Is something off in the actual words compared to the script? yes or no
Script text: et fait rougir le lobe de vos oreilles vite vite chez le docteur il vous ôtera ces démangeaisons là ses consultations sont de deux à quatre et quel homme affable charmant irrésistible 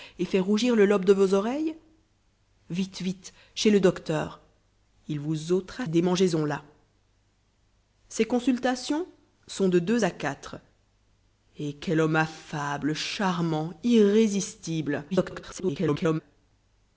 yes